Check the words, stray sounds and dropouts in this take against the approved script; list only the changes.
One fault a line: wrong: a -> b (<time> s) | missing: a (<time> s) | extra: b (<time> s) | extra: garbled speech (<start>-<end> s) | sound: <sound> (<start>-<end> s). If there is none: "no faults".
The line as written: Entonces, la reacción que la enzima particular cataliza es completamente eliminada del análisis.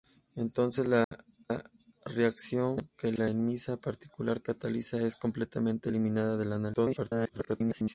sound: dropout (1.0-1.1 s)
extra: garbled speech (6.7-7.9 s)